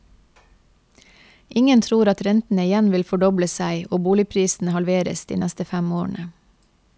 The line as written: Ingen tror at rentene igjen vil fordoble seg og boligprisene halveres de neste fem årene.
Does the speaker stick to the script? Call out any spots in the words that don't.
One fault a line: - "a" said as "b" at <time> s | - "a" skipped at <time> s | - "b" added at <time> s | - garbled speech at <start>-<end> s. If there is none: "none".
none